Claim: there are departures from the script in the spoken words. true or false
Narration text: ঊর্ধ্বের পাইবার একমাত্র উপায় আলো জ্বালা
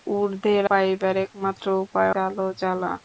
false